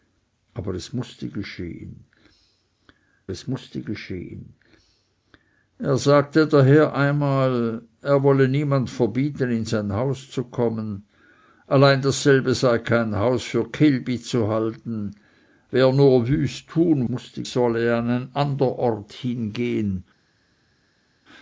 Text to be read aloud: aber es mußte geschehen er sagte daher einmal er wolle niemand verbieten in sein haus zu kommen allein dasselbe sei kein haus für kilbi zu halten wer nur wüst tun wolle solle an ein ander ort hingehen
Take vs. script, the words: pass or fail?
fail